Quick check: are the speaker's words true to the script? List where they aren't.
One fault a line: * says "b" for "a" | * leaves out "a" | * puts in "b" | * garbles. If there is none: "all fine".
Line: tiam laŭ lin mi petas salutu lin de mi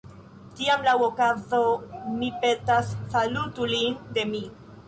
* says "okazo" for "lin"